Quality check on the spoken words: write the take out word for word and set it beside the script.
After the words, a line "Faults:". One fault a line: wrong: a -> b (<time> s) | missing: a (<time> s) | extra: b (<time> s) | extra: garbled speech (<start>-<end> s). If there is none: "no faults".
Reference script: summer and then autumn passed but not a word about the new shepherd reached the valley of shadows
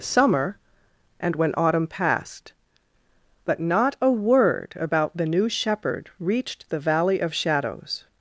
summer and when autumn passed but not a word about the new shepherd reached the valley of shadows
Faults:
wrong: then -> when (1.4 s)